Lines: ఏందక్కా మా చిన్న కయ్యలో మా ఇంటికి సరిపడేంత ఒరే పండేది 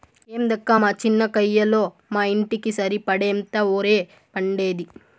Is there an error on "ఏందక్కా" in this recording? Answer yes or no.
no